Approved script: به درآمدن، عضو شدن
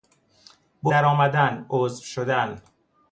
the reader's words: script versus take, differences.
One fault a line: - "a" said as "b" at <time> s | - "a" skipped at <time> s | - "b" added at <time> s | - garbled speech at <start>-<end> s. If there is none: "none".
none